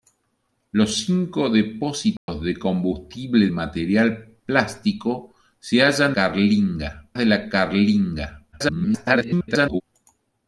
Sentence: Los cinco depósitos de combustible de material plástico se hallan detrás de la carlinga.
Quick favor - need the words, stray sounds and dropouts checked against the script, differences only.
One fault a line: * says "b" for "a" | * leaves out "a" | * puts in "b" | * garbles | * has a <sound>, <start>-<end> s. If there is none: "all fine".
* has a dropout, 2.2-2.3 s
* leaves out "de"
* says "carlinga" for "detrás"
* garbles